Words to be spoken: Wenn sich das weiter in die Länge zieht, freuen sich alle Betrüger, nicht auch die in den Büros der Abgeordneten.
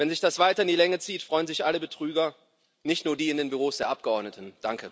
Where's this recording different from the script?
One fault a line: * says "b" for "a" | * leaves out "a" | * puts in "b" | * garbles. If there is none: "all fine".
* says "nur" for "auch"